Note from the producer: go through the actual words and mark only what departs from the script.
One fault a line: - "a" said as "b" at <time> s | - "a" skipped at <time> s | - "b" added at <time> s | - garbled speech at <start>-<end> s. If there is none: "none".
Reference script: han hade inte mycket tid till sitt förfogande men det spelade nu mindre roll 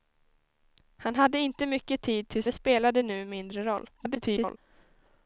- "sitt förfogande men" skipped at 2.4 s
- garbled speech at 4.0-4.6 s